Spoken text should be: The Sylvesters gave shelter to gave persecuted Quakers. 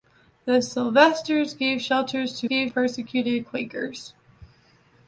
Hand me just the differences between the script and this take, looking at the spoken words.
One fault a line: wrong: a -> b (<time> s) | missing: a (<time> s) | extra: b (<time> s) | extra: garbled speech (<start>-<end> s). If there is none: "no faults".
no faults